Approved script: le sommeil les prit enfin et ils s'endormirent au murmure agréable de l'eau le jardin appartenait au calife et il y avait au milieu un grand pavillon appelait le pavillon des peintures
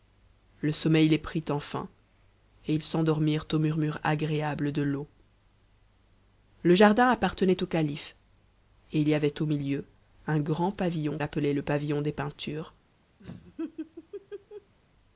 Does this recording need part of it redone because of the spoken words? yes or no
no